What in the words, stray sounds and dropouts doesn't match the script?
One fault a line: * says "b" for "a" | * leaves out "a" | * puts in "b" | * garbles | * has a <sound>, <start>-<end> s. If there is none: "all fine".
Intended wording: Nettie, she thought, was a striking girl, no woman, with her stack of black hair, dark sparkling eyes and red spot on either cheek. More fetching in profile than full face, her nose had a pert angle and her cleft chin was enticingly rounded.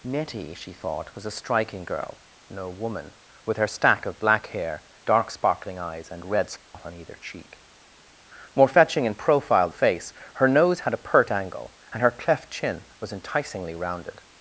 * has a dropout, 6.6-6.7 s
* leaves out "than full"